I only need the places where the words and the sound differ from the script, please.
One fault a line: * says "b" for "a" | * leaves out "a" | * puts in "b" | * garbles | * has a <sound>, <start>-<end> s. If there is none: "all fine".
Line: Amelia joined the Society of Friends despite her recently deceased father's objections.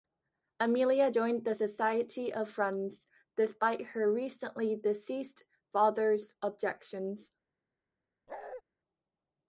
* has a bark, 8.3-8.6 s